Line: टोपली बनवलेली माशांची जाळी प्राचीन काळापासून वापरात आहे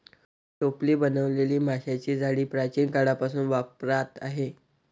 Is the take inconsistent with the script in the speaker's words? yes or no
no